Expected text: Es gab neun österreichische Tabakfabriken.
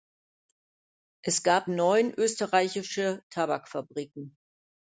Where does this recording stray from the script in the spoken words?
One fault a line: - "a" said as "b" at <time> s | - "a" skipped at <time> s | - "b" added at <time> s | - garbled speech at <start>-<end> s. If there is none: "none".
none